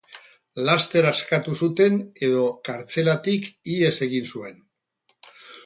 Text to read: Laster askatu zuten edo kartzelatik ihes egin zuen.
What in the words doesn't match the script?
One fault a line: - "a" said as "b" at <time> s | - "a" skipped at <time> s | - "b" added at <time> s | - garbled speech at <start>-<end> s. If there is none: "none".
none